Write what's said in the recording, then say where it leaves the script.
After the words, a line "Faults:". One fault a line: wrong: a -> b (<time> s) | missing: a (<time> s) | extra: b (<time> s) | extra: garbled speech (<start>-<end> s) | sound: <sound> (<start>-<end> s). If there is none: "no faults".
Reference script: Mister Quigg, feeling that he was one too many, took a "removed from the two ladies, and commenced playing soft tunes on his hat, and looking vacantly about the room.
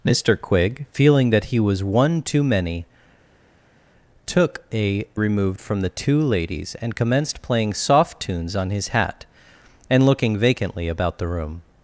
Mister Quigg, feeling that he was one too many, took a "removed from the two ladies, and commenced playing soft tunes on his hat, and looking vacantly about the room.
Faults:
no faults